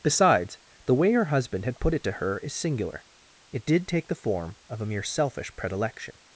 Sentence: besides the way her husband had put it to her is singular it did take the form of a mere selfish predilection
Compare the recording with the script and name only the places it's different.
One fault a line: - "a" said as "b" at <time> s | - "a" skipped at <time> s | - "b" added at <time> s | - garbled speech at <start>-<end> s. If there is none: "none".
none